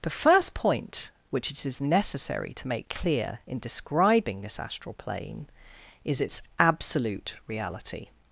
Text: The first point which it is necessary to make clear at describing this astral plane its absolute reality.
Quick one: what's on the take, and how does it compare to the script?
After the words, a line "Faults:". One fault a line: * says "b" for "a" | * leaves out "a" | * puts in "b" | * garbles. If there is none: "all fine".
The first point which it is necessary to make clear in describing this astral plane is its absolute reality.
Faults:
* says "in" for "at"
* puts in "is"